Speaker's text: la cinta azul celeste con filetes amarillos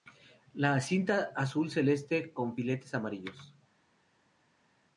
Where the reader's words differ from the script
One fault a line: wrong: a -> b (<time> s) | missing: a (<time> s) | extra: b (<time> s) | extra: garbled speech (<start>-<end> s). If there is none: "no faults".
no faults